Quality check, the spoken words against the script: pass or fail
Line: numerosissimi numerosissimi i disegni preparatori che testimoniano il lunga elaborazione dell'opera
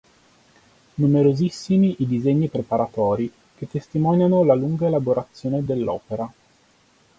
fail